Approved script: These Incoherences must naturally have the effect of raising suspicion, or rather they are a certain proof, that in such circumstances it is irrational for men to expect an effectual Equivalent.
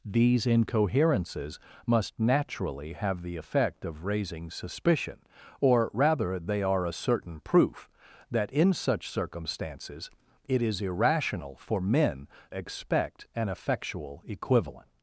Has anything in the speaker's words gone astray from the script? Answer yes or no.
yes